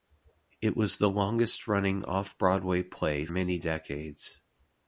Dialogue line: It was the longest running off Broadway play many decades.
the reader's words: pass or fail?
pass